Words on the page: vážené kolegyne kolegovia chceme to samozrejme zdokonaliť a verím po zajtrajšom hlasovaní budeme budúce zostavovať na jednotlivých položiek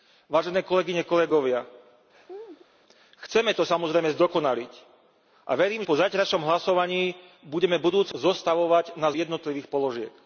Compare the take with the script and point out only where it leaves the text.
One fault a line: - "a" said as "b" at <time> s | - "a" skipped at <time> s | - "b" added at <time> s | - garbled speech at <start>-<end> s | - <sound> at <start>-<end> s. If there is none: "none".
- laugh at 2.1-2.7 s